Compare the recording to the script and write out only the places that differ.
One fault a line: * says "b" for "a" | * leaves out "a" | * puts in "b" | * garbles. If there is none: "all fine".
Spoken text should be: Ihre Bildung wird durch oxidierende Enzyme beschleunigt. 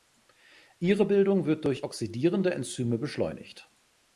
all fine